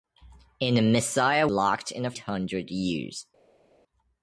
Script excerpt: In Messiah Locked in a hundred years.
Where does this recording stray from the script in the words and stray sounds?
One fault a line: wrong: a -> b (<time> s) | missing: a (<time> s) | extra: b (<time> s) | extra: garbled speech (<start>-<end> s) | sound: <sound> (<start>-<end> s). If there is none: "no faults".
no faults